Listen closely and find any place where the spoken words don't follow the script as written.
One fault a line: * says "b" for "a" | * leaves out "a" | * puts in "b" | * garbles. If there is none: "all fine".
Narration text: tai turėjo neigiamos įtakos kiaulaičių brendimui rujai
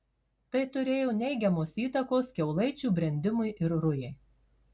* puts in "ir"